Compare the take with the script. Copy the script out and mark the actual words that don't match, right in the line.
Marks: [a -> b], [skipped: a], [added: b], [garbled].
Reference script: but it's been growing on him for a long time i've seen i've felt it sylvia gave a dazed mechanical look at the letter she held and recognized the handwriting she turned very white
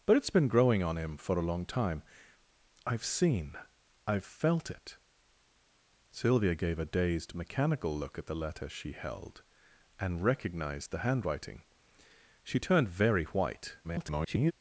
but it's been growing on him for a long time i've seen i've felt it sylvia gave a dazed mechanical look at the letter she held and recognized the handwriting she turned very white [garbled]